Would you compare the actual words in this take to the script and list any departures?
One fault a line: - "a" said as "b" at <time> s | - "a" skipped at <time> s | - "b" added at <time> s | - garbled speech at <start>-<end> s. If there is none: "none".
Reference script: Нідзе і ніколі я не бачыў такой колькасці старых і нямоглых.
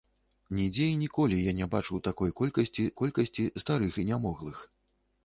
- "колькасці" added at 3.0 s